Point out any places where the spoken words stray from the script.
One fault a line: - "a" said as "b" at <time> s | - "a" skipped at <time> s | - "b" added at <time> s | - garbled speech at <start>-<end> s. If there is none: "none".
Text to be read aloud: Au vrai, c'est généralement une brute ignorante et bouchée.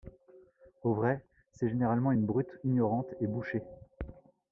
none